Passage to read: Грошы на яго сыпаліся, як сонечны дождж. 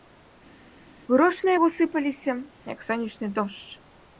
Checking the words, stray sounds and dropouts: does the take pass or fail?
pass